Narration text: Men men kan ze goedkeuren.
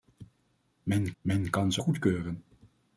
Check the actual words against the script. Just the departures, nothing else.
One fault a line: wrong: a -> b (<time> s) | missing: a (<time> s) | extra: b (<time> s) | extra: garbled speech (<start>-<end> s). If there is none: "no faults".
no faults